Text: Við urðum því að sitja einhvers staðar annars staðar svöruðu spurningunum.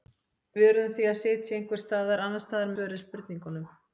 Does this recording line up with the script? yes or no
yes